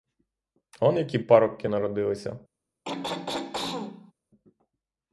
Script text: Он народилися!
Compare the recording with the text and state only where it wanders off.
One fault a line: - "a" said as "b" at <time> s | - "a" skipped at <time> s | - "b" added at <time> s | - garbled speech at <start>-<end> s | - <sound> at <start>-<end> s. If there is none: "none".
- "які парубки" added at 1.0 s
- throat clearing at 2.9-4.1 s